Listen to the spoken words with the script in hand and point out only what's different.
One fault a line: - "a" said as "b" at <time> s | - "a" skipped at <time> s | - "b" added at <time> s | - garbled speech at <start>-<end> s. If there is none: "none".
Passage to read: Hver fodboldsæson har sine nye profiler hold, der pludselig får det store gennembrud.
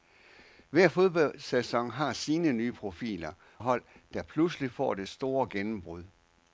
none